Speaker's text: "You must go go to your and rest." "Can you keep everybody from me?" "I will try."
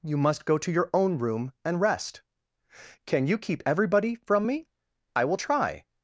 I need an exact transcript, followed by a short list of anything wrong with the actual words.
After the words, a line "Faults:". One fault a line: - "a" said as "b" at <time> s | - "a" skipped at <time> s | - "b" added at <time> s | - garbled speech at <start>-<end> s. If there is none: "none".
"You must go to your own room and rest." "Can you keep everybody from me?" "I will try."
Faults:
- "go" skipped at 0.6 s
- "own room" added at 0.9 s